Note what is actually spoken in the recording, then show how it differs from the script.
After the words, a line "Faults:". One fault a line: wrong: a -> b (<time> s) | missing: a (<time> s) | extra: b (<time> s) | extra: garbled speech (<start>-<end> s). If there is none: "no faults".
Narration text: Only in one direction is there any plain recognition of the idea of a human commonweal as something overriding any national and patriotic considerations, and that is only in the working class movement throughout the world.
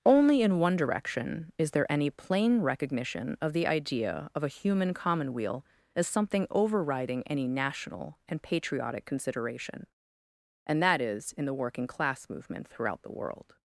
Only in one direction is there any plain recognition of the idea of a human commonweal as something overriding any national and patriotic consideration, and that is in the working class movement throughout the world.
Faults:
wrong: considerations -> consideration (9.1 s)
missing: only (11.3 s)